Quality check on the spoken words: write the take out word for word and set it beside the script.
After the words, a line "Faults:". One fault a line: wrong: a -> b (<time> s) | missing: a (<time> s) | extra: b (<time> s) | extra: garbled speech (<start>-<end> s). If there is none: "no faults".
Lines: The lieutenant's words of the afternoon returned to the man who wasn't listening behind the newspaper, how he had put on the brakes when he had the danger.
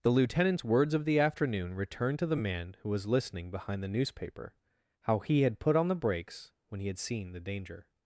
The lieutenant's words of the afternoon returned to the man who was listening behind the newspaper, how he had put on the brakes when he had seen the danger.
Faults:
wrong: wasn't -> was (2.9 s)
extra: seen (7.0 s)